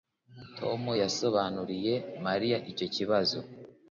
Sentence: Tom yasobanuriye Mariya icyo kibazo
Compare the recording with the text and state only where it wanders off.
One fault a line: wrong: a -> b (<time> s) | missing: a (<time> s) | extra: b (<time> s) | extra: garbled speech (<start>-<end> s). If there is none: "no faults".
no faults